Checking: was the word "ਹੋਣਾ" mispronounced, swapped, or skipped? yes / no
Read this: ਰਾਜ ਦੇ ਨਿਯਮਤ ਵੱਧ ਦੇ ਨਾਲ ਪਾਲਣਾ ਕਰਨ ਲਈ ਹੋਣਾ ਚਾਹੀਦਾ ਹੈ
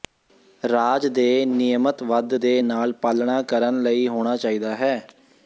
no